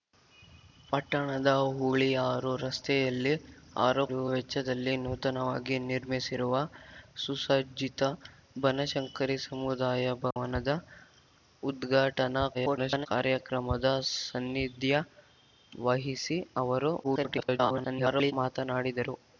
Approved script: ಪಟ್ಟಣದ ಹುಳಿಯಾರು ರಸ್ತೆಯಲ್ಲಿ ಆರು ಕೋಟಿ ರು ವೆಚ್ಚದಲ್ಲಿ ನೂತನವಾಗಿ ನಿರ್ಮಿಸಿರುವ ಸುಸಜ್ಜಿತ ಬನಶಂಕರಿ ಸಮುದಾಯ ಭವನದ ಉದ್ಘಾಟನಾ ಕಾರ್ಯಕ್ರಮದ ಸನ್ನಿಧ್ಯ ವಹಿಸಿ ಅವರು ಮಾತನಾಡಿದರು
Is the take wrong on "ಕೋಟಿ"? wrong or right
wrong